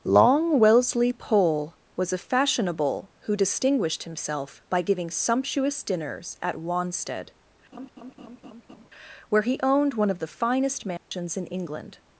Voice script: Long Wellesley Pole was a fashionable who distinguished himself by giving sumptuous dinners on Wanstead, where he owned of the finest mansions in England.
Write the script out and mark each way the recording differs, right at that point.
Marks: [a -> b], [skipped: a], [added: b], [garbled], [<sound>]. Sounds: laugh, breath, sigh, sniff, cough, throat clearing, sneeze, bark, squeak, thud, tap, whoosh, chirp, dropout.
Long Wellesley Pole was a fashionable who distinguished himself by giving sumptuous dinners [on -> at] Wanstead, [laugh] where he owned [added: one] of the finest mansions [dropout] in England.